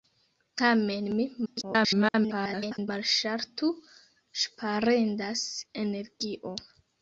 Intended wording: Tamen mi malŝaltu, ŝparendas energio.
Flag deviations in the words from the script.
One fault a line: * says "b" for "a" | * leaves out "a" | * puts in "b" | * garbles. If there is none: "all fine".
* garbles